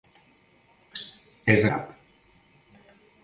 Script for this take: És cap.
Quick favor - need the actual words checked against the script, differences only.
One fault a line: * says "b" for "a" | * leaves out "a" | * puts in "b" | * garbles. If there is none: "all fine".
all fine